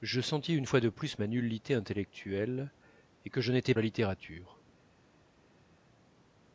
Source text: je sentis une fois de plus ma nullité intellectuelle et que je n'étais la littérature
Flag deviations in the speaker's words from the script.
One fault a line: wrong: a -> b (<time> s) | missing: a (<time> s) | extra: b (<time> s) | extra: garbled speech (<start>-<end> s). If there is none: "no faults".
no faults